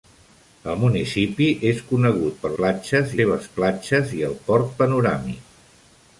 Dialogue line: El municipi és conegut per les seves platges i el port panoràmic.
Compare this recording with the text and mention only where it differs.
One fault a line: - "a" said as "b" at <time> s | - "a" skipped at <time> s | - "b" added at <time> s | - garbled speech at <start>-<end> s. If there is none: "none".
- "les" said as "platges" at 2.6 s